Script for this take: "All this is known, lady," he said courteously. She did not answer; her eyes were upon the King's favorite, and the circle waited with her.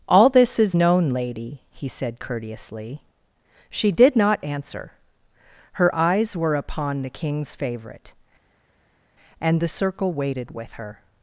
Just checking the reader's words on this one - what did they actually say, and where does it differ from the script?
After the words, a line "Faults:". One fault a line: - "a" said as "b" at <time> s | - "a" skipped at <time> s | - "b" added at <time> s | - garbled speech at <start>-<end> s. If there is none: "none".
"All this is known, lady," he said courteously. She did not answer; her eyes were upon the King's favorite, and the circle waited with her.
Faults:
none